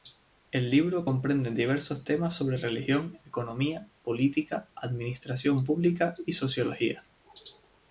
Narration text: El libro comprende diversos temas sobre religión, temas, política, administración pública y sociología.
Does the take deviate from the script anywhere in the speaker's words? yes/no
yes